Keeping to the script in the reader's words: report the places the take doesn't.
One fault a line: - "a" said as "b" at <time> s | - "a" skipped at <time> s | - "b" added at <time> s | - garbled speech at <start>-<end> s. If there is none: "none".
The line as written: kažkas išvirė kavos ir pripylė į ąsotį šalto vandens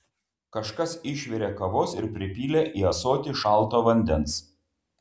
none